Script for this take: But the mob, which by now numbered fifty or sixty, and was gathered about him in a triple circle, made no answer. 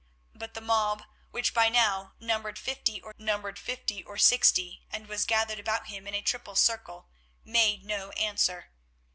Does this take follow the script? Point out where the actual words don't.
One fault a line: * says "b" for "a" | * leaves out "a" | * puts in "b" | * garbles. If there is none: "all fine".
* puts in "numbered fifty or"